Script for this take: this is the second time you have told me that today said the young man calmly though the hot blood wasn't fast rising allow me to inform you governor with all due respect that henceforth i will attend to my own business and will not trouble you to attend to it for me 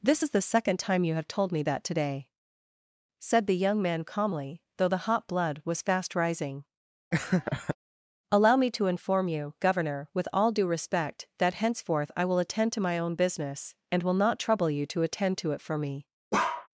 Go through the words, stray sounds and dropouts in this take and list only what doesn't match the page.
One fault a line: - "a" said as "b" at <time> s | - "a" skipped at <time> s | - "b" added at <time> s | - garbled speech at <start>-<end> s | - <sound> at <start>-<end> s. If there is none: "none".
- "wasn't" said as "was" at 5.6 s
- laugh at 7.1-7.8 s
- bark at 16.3-16.7 s